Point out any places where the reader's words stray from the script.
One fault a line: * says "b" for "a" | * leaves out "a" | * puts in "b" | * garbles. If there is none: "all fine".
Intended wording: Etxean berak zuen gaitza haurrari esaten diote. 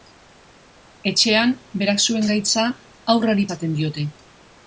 all fine